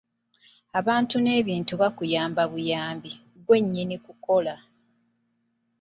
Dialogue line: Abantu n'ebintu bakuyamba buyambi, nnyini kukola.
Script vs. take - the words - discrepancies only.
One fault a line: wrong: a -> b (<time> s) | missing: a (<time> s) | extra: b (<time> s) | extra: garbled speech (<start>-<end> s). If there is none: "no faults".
extra: ggwe (3.4 s)